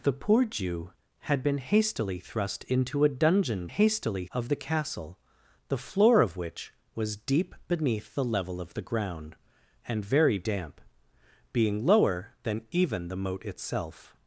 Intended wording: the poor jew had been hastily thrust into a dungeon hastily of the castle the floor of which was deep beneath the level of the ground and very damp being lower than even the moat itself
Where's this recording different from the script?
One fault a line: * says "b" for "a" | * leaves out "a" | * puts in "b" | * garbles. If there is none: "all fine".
all fine